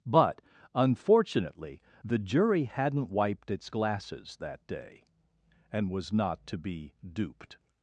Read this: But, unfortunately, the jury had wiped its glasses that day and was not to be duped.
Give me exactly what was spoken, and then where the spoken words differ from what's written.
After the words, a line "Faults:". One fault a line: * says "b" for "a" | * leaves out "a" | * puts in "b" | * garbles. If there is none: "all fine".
But, unfortunately, the jury hadn't wiped its glasses that day and was not to be duped.
Faults:
* says "hadn't" for "had"